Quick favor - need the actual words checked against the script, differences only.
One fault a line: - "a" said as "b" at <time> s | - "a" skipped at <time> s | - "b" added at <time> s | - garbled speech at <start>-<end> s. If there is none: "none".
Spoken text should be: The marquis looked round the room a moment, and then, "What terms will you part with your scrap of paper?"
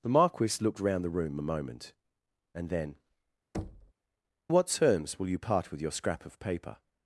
none